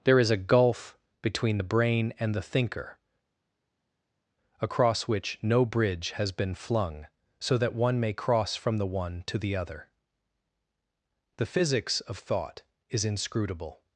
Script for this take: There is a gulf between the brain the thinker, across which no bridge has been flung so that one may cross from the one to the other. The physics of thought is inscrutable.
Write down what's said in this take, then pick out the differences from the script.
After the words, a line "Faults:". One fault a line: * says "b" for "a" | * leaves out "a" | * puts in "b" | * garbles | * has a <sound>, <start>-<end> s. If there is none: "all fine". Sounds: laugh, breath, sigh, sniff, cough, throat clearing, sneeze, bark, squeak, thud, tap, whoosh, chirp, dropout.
There is a gulf between the brain and the thinker, across which no bridge has been flung so that one may cross from the one to the other. The physics of thought is inscrutable.
Faults:
* puts in "and"